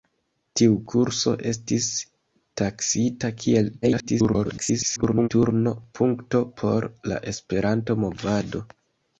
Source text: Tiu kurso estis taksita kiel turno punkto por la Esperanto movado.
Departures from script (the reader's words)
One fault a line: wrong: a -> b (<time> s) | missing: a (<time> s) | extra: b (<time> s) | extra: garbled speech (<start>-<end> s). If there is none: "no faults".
extra: garbled speech (3.8-5.3 s)